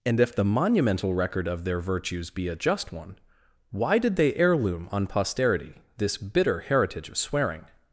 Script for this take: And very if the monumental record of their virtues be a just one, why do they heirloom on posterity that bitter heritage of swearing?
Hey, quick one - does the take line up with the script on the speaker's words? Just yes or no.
no